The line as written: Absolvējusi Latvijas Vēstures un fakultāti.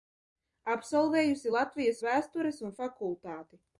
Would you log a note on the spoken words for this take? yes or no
no